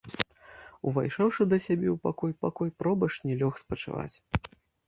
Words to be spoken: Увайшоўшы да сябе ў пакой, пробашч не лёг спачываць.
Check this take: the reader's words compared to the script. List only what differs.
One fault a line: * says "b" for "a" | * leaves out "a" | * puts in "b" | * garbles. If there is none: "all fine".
* puts in "пакой"